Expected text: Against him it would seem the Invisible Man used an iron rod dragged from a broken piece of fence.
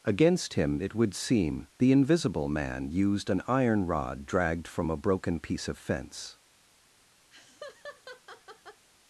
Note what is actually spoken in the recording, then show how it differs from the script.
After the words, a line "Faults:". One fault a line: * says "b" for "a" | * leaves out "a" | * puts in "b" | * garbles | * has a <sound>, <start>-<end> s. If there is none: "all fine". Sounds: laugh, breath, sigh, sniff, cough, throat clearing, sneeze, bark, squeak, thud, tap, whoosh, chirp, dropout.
Against him it would seem the Invisible Man used an iron rod dragged from a broken piece of fence.
Faults:
* has a laugh, 7.3-8.8 s